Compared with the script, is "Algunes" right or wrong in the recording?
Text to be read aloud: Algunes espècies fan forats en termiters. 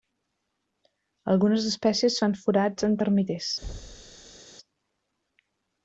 right